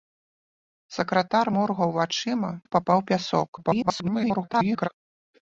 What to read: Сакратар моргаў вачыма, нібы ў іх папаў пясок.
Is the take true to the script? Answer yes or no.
no